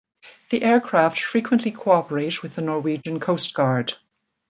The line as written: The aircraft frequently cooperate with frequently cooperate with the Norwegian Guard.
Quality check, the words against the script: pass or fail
fail